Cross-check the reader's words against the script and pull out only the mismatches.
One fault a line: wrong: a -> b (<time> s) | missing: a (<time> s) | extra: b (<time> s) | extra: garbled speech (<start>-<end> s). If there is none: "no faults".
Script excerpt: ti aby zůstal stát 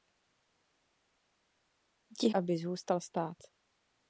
no faults